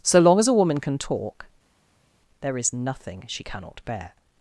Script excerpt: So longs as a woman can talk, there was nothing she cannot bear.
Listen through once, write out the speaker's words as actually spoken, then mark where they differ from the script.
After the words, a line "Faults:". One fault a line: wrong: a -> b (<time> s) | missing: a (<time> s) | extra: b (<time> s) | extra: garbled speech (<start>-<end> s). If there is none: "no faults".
So long as a woman can talk, there is nothing she cannot bear.
Faults:
wrong: longs -> long (0.2 s)
wrong: was -> is (2.6 s)